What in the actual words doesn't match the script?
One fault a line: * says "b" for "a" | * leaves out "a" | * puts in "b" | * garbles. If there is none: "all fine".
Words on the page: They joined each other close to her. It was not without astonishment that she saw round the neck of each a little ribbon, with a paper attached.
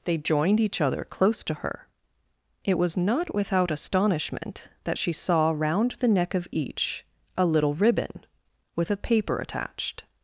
all fine